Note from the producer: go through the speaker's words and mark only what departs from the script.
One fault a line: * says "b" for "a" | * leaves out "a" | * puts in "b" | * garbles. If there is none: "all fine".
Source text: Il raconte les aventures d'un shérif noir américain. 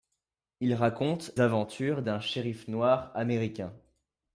* leaves out "les"